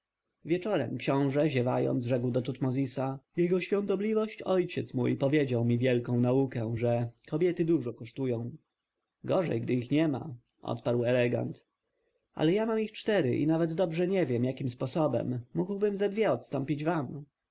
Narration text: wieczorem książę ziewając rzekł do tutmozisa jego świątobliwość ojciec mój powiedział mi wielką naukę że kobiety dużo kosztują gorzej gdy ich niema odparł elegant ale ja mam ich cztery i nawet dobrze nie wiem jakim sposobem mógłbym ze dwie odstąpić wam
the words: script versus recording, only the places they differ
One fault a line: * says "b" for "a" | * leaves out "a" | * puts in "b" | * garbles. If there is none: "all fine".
all fine